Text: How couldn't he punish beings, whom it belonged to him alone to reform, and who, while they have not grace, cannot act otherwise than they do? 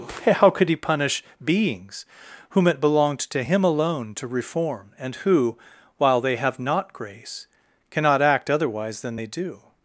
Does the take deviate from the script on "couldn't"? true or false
true